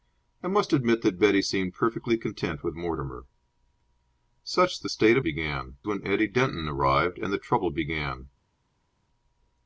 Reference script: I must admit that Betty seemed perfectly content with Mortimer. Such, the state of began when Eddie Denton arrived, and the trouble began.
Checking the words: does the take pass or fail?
pass